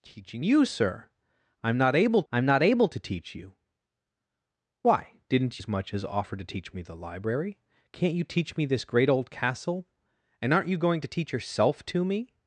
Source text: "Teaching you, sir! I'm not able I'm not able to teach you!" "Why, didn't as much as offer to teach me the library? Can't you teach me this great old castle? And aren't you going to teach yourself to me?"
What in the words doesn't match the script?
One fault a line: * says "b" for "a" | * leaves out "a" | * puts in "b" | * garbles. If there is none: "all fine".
all fine